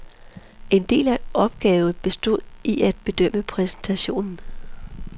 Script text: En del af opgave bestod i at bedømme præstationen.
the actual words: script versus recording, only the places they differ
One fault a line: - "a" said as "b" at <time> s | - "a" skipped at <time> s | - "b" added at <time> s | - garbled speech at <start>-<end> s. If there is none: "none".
none